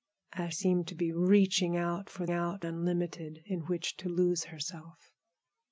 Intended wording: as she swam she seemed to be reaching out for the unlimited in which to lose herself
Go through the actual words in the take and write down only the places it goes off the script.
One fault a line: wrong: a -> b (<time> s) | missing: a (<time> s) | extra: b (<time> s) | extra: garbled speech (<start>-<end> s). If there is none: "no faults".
missing: she swam she (0.6 s)
wrong: the -> out (2.3 s)